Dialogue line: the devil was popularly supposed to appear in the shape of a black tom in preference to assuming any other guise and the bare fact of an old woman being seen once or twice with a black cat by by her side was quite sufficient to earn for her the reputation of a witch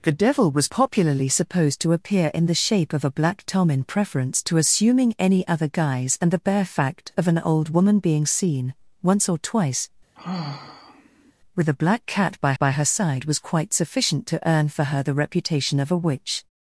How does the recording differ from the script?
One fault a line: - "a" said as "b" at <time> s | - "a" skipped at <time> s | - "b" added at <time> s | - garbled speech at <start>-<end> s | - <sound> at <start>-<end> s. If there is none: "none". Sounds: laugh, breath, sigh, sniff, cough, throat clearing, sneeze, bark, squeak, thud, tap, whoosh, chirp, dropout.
- sigh at 10.1-11.3 s